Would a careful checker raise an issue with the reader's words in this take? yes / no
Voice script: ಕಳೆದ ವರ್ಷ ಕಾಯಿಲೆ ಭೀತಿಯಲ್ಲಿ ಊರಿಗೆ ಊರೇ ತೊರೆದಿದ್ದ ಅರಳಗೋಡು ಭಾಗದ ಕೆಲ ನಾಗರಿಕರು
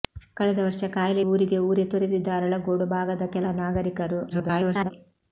yes